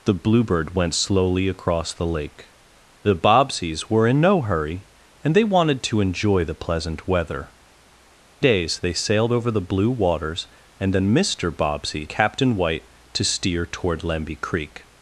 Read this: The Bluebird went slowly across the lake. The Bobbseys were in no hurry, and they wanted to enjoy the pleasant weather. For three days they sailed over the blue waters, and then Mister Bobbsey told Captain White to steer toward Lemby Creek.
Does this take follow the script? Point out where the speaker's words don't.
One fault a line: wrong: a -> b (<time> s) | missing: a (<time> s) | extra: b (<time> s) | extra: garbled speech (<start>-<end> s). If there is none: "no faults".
missing: For three (7.5 s)
missing: told (12.1 s)